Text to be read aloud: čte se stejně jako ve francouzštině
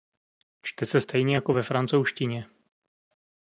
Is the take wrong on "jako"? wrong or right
right